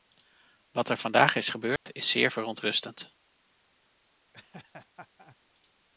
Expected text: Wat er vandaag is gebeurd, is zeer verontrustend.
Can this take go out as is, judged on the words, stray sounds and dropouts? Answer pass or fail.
fail